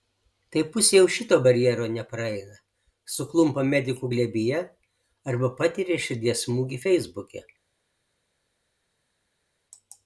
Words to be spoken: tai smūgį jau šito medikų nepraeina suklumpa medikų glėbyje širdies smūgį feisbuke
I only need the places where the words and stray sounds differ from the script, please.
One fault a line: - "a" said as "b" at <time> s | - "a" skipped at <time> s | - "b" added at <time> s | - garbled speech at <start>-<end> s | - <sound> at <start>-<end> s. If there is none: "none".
- "smūgį" said as "pusė" at 0.8 s
- "medikų" said as "barjero" at 1.5 s
- "arba patiria" added at 5.3 s